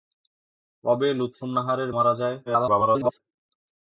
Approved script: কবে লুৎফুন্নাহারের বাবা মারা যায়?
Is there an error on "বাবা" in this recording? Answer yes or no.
yes